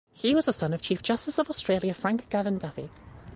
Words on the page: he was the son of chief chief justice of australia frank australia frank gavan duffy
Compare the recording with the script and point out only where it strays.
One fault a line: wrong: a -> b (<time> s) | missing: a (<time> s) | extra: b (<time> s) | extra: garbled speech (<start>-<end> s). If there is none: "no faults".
missing: chief (1.0 s)
missing: australia frank (2.3 s)